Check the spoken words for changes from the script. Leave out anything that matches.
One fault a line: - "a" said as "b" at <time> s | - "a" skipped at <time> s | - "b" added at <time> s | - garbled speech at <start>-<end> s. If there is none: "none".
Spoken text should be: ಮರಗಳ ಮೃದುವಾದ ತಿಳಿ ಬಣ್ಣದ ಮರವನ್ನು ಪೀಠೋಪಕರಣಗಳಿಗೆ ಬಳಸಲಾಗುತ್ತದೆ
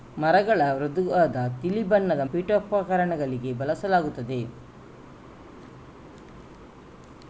- "ಮರವನ್ನು" skipped at 2.2 s